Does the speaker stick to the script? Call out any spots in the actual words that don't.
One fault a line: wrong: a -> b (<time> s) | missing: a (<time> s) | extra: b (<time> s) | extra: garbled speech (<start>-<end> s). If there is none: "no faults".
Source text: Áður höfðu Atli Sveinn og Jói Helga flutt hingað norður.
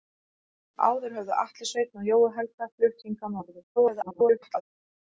extra: garbled speech (3.8-4.6 s)